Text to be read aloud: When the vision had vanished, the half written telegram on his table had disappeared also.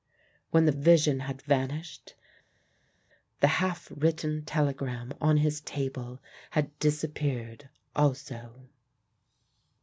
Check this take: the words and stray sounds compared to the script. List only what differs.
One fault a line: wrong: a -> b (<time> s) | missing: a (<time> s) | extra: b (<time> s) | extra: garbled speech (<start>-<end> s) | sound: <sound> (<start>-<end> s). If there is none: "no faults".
no faults